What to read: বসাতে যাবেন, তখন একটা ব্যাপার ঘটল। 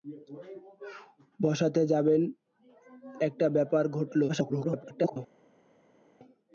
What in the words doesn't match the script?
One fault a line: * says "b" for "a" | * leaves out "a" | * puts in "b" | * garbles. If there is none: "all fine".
* leaves out "তখন"
* garbles